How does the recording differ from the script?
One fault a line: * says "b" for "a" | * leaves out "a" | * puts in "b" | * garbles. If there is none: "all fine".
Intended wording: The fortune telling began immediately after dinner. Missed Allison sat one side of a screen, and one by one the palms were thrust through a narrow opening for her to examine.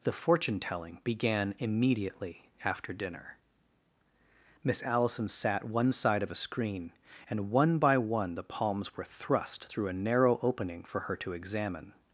* says "Miss" for "Missed"